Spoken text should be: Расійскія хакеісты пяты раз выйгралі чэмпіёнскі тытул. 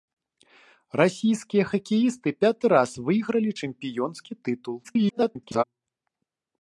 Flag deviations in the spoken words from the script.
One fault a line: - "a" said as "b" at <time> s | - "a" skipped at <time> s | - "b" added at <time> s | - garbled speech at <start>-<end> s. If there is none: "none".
- garbled speech at 4.8-5.6 s